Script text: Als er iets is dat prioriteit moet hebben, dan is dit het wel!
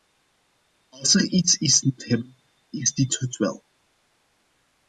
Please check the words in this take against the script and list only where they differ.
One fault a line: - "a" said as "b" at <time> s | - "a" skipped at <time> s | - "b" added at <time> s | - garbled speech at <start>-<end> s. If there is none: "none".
- "dat prioriteit" skipped at 1.8 s
- "dan" skipped at 2.4 s